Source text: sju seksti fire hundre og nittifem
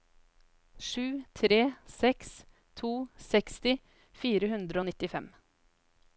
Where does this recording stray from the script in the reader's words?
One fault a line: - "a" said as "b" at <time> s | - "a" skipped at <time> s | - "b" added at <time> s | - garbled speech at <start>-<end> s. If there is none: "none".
- "tre seks to" added at 1.3 s